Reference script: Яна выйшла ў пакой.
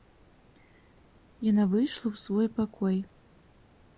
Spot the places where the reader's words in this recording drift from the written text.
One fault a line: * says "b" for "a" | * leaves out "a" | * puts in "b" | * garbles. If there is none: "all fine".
* puts in "свой"